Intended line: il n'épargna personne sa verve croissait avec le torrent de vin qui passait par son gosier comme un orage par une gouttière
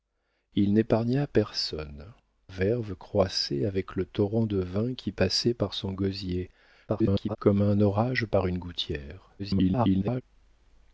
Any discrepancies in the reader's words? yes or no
yes